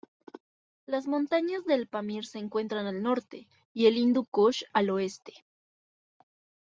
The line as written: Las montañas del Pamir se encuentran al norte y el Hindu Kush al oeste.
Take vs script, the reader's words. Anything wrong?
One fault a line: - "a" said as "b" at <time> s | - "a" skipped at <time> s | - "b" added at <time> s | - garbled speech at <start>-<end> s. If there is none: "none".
none